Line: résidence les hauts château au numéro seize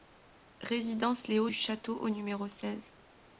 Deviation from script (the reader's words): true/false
false